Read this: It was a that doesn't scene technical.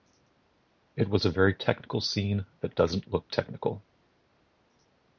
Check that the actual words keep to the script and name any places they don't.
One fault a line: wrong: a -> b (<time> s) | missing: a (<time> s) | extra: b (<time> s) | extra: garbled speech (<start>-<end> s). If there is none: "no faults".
extra: very technical scene (1.3 s)
wrong: scene -> look (3.1 s)